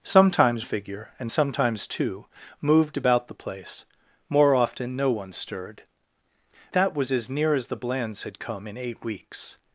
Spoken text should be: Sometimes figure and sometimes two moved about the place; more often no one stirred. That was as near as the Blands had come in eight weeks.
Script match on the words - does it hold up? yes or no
yes